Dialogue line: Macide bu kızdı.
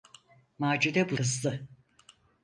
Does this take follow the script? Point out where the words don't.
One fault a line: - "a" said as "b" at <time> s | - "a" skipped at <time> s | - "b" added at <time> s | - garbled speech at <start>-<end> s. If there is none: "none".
none